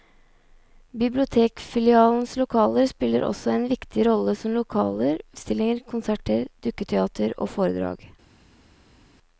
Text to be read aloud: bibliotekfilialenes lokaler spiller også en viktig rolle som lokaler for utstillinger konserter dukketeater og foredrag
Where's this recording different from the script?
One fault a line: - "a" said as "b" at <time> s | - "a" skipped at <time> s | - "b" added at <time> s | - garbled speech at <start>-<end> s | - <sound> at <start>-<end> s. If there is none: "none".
- "for" skipped at 5.2 s